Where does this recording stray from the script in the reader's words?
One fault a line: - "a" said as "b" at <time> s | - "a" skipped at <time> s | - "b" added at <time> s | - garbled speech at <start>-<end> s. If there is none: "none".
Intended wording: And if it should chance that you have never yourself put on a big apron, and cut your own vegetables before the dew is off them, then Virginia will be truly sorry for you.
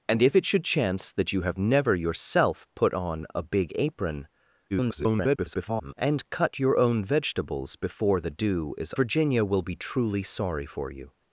- garbled speech at 4.7-5.9 s
- "off them then" skipped at 8.9 s